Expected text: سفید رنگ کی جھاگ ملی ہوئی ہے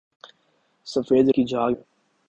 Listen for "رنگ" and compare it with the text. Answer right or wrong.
wrong